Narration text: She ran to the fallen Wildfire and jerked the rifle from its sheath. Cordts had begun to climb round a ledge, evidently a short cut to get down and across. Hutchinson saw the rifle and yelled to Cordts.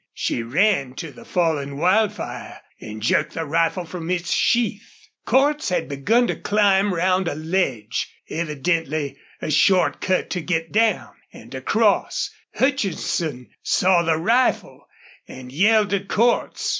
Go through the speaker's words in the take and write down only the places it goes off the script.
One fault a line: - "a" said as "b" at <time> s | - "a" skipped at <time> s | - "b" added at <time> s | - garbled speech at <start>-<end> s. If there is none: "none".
none